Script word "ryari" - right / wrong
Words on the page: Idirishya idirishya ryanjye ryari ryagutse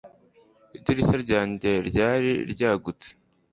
right